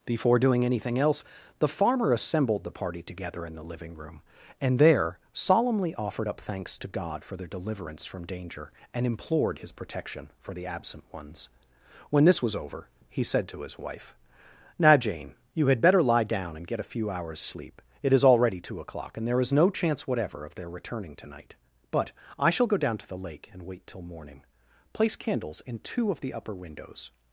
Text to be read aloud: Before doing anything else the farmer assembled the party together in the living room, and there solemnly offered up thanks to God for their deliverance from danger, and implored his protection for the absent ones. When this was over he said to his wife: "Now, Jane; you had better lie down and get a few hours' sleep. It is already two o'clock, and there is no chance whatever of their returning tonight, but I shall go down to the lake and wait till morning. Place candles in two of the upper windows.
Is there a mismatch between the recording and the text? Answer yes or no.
no